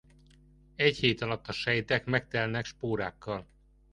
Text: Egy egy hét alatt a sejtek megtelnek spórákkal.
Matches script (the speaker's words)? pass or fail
fail